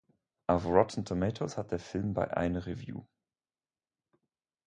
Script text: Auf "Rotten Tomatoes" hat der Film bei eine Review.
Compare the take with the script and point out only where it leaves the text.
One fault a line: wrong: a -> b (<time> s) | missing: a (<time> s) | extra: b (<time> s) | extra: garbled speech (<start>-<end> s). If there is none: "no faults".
no faults